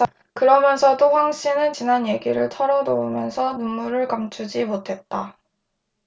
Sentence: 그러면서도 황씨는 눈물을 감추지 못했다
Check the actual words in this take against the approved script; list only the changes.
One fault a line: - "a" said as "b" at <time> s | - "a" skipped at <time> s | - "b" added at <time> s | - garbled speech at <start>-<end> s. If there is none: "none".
- "지난 얘기를 털어놓으면서" added at 1.7 s